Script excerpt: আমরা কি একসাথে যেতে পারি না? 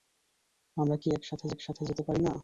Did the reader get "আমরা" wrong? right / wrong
right